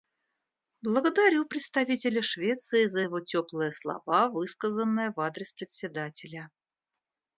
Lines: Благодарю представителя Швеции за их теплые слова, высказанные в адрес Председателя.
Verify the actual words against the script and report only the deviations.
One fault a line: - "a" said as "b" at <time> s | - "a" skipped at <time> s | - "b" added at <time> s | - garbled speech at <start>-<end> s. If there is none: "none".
- "их" said as "его" at 3.0 s